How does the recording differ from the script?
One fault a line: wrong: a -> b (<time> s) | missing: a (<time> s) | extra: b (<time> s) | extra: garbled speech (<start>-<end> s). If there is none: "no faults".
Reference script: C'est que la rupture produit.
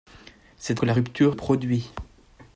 no faults